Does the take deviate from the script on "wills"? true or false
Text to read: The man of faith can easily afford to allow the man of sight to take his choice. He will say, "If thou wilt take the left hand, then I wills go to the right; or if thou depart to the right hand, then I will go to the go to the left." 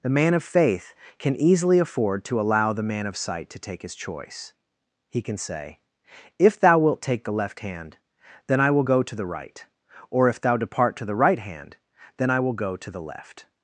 true